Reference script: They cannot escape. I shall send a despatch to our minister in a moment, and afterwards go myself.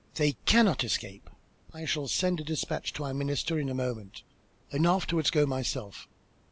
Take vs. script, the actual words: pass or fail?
pass